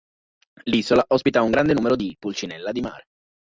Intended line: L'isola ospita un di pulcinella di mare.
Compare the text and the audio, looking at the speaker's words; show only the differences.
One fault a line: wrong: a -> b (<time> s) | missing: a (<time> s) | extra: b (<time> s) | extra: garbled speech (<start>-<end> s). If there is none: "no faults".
extra: grande numero (1.5 s)